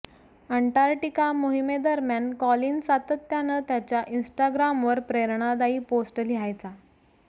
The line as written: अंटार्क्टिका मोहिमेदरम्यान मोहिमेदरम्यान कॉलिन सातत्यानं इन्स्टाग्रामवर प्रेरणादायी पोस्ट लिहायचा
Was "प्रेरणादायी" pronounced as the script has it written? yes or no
yes